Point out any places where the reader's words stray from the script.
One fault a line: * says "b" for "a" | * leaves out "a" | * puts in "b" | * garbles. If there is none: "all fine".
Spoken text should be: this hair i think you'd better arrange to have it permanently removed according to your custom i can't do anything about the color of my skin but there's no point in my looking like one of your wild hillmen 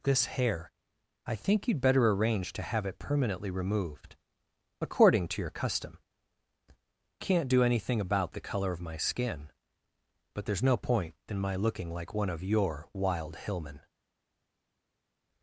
* leaves out "i"